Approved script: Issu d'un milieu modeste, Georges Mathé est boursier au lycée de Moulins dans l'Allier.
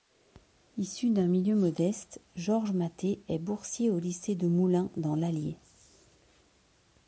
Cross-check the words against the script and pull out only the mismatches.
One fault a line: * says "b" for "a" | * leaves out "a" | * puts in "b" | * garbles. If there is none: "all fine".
all fine